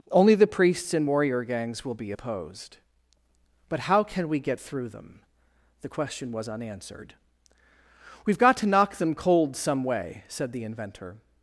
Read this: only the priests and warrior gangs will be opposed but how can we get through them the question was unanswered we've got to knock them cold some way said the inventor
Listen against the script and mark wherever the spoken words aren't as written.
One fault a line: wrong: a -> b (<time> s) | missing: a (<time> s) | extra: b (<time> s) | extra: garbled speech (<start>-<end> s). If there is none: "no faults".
no faults